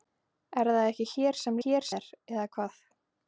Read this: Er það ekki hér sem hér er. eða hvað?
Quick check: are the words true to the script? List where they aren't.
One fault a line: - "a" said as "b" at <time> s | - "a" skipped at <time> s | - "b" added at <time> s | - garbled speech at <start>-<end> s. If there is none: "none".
none